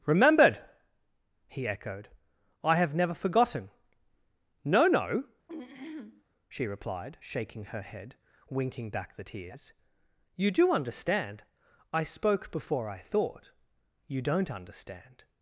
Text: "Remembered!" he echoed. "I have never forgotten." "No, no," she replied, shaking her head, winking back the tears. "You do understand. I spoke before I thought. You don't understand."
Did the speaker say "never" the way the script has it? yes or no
yes